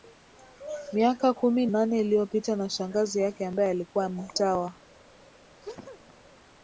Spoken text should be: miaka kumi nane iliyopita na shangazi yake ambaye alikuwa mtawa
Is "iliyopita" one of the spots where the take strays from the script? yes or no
no